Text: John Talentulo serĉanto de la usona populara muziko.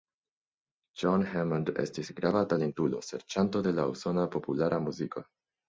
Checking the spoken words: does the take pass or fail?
fail